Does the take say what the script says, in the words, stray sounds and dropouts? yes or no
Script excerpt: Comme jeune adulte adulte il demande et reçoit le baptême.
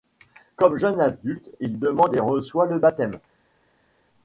no